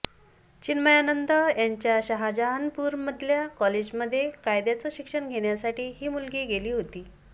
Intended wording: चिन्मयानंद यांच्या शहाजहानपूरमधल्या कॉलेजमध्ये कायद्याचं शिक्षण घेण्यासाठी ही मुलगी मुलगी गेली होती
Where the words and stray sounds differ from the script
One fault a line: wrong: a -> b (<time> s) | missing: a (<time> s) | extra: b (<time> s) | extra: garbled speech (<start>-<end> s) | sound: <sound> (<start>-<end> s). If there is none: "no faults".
missing: मुलगी (6.4 s)